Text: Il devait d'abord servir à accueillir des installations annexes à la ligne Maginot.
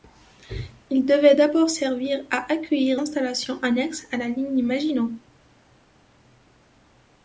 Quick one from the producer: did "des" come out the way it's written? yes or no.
no